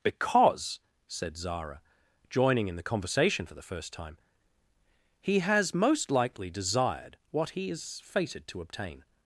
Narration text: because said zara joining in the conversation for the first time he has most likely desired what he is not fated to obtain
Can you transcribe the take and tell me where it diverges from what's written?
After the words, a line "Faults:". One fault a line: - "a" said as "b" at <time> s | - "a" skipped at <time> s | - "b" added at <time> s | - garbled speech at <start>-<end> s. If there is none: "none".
because said zara joining in the conversation for the first time he has most likely desired what he is fated to obtain
Faults:
- "not" skipped at 8.0 s